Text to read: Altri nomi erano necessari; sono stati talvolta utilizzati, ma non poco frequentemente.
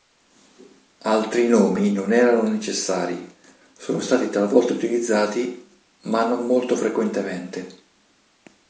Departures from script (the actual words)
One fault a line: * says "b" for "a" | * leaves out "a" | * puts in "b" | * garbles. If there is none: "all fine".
* puts in "non"
* says "molto" for "poco"